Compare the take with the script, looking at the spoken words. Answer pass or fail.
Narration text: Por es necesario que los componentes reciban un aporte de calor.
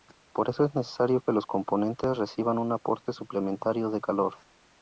fail